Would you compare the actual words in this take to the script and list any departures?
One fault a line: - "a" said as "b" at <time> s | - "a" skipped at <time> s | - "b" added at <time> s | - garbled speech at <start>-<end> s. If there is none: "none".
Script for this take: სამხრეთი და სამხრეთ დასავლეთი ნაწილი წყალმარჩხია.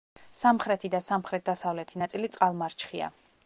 none